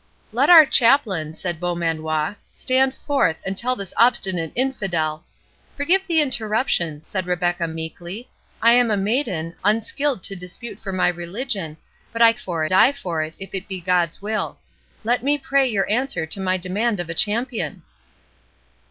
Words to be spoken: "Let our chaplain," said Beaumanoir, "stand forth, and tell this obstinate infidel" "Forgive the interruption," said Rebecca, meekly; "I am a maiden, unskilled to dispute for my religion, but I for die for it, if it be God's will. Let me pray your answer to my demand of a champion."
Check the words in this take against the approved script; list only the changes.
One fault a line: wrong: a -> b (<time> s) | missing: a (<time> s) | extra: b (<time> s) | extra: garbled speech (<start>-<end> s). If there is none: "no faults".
no faults